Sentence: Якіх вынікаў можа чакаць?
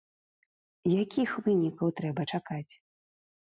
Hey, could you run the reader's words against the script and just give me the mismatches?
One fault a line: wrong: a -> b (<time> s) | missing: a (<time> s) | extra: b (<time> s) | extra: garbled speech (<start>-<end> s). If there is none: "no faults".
wrong: можа -> трэба (2.0 s)